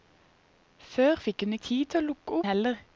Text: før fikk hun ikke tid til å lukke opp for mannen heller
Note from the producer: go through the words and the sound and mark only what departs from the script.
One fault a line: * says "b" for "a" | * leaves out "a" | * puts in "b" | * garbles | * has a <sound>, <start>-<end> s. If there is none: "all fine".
* leaves out "ikke"
* leaves out "opp for mannen"